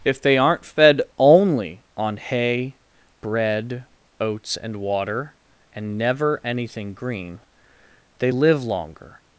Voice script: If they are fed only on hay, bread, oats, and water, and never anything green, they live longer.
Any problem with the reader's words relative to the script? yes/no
yes